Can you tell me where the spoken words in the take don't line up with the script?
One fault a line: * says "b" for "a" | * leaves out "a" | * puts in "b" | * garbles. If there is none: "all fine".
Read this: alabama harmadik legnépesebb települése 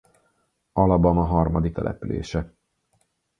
* leaves out "legnépesebb"